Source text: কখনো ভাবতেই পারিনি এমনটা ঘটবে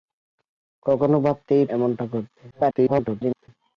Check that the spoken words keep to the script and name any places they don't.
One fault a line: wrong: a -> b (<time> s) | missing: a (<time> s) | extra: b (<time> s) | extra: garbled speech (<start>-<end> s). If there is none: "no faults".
missing: পারিনি (1.6 s)
extra: garbled speech (2.5-3.5 s)